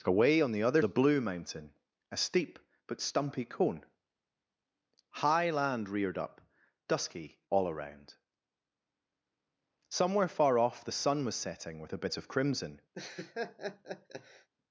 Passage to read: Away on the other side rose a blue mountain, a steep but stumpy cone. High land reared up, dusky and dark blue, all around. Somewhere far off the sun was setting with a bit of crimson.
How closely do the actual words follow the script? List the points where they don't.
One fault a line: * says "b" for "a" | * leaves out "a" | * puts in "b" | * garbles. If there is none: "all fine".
* leaves out "side rose"
* leaves out "and dark blue"